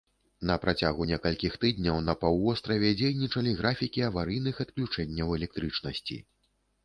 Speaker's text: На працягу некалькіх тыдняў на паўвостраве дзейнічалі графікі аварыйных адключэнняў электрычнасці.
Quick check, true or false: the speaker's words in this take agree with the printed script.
true